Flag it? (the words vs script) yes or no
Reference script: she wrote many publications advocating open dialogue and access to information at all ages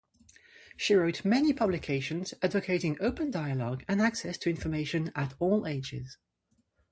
no